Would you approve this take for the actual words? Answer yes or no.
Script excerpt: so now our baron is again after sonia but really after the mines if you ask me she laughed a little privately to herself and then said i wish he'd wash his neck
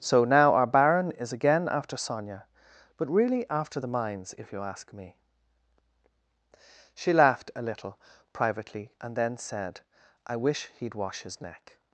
no